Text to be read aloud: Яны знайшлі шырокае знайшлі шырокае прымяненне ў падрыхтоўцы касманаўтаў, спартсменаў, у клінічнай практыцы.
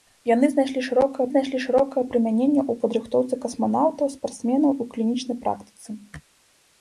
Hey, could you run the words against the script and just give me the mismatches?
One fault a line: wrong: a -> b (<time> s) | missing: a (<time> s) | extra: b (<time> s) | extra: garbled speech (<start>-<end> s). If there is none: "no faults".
no faults